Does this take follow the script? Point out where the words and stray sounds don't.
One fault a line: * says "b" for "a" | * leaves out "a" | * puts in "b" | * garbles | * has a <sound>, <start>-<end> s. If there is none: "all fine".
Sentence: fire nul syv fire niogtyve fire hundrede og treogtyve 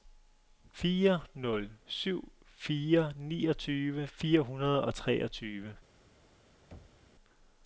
* has a thud, 6.7-7.1 s